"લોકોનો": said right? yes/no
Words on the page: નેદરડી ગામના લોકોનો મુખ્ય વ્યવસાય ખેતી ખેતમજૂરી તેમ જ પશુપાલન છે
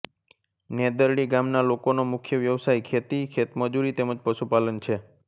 yes